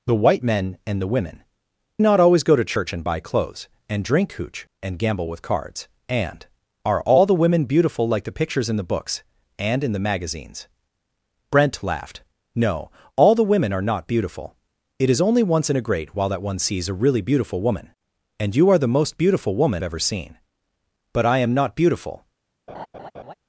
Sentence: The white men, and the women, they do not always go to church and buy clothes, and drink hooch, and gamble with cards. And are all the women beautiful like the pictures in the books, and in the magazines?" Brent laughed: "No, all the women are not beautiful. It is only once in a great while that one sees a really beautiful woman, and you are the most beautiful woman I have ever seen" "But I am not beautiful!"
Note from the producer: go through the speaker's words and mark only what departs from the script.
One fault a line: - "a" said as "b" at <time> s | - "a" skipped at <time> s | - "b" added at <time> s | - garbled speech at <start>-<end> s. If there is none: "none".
- "they do" skipped at 1.4 s
- "I have" skipped at 19.8 s